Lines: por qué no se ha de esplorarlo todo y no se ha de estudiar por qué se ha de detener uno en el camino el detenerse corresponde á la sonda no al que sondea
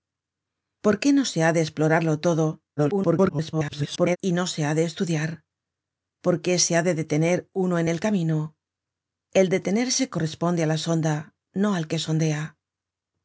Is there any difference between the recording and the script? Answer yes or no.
yes